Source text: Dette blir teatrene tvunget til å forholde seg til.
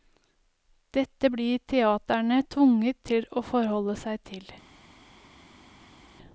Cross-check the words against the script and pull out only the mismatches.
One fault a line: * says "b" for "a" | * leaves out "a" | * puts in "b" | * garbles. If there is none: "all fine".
all fine